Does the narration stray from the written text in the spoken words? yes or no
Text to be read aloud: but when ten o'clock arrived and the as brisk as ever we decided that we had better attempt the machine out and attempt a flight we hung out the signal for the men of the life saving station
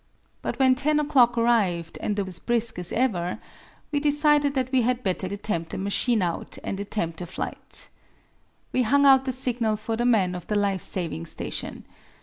no